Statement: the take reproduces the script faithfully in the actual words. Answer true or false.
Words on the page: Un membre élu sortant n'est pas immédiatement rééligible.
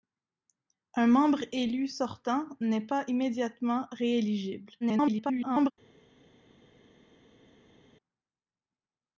false